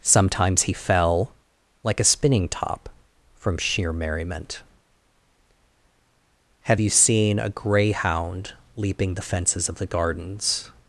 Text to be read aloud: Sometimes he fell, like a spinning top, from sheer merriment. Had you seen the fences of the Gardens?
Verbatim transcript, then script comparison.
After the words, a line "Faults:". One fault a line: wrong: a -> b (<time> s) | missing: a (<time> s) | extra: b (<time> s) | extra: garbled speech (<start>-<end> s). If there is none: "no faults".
Sometimes he fell, like a spinning top, from sheer merriment. Have you seen a greyhound leaping the fences of the Gardens?
Faults:
wrong: Had -> Have (6.6 s)
extra: a greyhound leaping (7.4 s)